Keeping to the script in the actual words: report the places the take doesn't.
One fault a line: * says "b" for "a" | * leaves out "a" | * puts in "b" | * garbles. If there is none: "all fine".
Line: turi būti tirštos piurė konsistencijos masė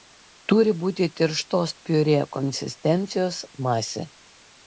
all fine